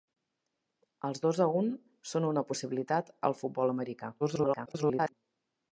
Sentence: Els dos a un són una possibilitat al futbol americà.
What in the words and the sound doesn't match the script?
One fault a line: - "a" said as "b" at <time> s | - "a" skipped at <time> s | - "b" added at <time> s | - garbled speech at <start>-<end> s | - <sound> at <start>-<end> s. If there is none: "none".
- garbled speech at 4.2-5.1 s